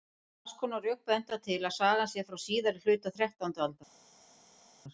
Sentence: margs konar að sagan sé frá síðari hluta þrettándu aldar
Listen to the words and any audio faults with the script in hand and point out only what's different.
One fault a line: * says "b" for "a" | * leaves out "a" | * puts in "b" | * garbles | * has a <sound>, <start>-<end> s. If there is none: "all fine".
* puts in "rök benda til"